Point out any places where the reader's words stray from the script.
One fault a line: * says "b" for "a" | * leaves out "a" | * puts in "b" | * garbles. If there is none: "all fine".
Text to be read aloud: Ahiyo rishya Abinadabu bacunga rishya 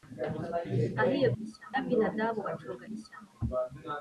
all fine